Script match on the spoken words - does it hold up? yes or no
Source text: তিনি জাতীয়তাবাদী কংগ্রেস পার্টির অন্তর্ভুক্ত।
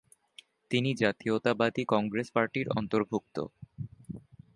yes